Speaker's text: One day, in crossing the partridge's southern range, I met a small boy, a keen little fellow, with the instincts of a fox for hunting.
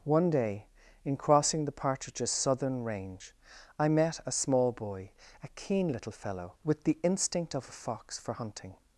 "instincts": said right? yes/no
no